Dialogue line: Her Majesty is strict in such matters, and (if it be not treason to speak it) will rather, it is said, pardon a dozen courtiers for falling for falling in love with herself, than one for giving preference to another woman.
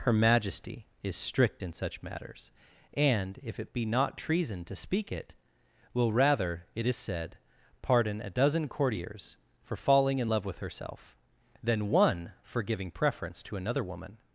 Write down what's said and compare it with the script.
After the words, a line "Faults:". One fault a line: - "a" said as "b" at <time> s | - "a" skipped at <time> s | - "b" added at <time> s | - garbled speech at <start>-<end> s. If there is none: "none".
Her Majesty is strict in such matters, and (if it be not treason to speak it) will rather, it is said, pardon a dozen courtiers for falling in love with herself, than one for giving preference to another woman.
Faults:
- "for falling" skipped at 10.2 s